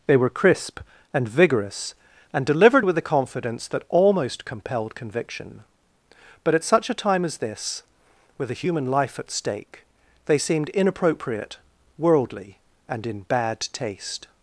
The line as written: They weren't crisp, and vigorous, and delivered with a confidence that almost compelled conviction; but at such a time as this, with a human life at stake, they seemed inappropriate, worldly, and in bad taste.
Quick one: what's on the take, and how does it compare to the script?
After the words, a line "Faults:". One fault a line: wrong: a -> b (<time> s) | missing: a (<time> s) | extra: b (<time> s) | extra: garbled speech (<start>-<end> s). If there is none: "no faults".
They were crisp, and vigorous, and delivered with a confidence that almost compelled conviction; but at such a time as this, with a human life at stake, they seemed inappropriate, worldly, and in bad taste.
Faults:
wrong: weren't -> were (0.2 s)